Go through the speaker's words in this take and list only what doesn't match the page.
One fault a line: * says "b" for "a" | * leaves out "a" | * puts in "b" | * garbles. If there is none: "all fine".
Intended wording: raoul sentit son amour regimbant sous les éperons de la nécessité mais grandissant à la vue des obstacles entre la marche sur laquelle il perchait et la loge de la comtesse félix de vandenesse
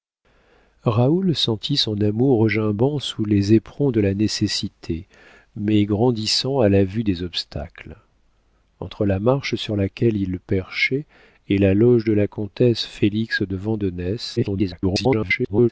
* garbles